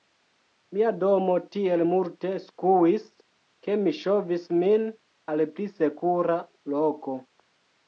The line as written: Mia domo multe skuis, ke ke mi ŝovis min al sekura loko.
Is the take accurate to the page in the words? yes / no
no